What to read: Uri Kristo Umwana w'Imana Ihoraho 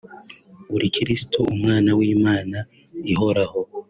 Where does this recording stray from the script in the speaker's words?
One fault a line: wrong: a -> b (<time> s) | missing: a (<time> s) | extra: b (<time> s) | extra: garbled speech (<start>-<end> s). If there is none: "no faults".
no faults